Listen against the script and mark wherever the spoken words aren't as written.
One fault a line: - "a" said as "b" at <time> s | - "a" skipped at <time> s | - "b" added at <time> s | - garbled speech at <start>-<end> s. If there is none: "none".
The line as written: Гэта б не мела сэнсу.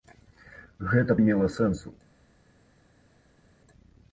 - "б" skipped at 1.2 s